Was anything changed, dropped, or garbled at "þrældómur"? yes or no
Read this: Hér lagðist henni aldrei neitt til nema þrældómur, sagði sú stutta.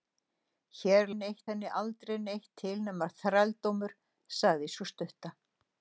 no